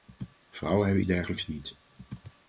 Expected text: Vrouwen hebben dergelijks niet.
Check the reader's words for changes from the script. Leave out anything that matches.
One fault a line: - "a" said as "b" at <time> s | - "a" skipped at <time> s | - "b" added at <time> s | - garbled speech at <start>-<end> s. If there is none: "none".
none